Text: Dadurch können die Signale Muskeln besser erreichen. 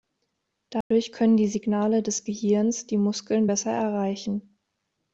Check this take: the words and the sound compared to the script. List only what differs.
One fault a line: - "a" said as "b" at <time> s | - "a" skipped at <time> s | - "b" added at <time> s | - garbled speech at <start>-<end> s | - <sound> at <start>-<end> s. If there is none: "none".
- dropout at 0.8-0.9 s
- "des Gehirns die" added at 2.0 s